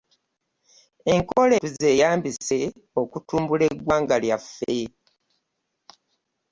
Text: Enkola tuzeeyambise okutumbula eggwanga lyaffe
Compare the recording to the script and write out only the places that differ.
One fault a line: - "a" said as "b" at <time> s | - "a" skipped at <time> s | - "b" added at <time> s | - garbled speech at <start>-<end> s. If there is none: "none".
none